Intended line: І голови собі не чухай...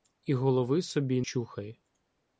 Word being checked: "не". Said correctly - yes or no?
no